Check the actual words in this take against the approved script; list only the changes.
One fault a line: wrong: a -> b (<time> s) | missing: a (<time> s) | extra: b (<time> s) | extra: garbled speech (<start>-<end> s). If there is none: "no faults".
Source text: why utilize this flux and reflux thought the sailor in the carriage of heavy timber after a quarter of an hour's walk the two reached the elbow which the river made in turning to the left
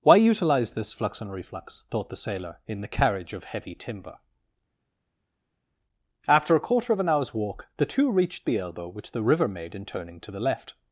no faults